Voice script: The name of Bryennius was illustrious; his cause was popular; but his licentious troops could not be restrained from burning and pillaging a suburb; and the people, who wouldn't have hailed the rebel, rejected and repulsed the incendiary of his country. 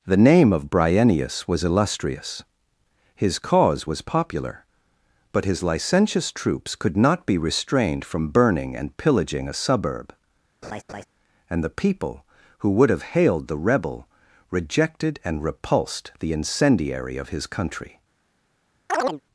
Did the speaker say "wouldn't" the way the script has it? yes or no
no